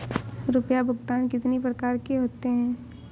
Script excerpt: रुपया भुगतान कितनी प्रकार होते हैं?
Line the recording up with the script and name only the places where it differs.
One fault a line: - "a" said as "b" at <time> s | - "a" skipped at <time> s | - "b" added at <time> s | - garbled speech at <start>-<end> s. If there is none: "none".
- "के" added at 2.0 s